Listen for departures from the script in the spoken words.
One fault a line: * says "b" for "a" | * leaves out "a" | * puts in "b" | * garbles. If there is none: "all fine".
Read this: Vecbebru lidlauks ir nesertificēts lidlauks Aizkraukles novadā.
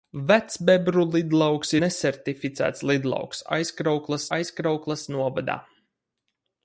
* leaves out "ir"
* puts in "Aizkraukles"